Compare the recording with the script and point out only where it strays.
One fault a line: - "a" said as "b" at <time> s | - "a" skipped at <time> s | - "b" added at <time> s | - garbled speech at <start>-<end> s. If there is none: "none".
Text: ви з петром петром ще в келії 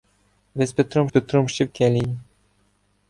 none